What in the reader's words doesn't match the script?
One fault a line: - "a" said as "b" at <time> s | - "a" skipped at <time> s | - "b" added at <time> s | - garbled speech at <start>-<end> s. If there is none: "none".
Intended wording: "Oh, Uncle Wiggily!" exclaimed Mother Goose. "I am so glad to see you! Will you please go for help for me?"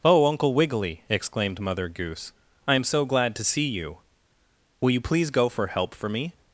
none